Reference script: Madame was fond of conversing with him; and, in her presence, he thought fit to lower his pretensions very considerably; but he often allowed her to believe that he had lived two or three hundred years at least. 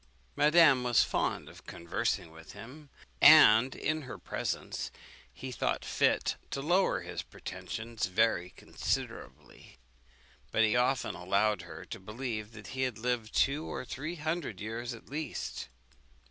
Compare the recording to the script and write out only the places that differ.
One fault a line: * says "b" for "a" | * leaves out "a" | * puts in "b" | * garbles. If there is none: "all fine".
all fine